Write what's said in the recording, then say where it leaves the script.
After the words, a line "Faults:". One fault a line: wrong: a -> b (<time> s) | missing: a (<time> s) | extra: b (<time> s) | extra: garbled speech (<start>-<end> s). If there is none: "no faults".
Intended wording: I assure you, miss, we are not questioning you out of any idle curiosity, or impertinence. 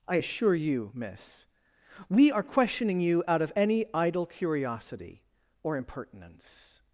I assure you, miss, we are questioning you out of any idle curiosity, or impertinence.
Faults:
missing: not (2.4 s)